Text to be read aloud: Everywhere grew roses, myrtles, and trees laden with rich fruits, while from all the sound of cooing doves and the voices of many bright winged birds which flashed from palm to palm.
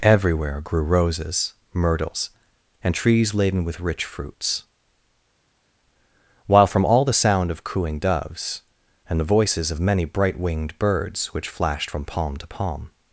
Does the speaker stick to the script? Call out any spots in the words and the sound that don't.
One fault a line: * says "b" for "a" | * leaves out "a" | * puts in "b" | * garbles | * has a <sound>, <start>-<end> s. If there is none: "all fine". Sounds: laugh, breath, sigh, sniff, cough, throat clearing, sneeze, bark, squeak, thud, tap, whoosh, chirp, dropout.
all fine